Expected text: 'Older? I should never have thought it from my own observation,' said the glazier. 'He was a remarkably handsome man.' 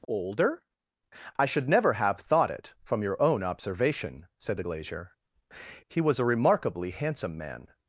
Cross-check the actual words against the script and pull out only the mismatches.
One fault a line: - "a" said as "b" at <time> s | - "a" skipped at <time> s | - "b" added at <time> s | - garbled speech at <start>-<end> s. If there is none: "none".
- "my" said as "your" at 3.0 s